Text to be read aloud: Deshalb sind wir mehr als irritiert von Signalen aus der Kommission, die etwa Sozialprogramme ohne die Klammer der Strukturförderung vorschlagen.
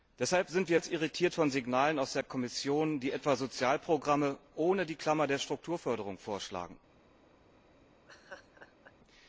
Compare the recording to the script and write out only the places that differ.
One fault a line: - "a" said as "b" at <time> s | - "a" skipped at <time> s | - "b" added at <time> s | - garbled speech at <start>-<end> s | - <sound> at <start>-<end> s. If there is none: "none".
- "mehr" skipped at 0.8 s
- laugh at 8.1-8.9 s